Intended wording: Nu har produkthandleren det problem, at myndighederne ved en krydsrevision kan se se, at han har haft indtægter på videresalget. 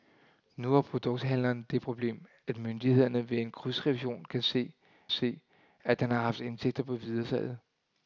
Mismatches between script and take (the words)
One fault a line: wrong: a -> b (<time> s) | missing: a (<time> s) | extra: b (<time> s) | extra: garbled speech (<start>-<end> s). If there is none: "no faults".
no faults